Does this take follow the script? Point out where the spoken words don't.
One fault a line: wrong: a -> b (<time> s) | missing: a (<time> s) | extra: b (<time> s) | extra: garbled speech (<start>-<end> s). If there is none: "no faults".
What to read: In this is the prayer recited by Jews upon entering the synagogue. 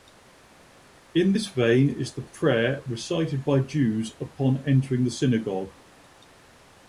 extra: vein (1.5 s)